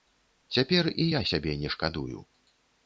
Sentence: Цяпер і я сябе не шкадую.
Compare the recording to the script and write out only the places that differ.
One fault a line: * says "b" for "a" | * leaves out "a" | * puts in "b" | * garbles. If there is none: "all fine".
all fine